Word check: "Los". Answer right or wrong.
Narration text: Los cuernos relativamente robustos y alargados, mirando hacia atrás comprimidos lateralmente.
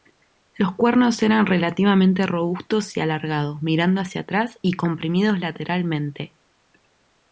right